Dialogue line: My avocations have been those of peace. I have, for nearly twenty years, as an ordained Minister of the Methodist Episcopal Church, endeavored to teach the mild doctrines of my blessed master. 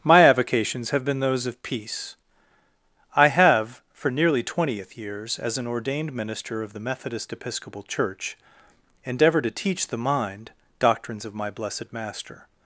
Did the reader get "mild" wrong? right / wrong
wrong